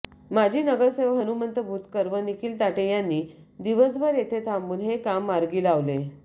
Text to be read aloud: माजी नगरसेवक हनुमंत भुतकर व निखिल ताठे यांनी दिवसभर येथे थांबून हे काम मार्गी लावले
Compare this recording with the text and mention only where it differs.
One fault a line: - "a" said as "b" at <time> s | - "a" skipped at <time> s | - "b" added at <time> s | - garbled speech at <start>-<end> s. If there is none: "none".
none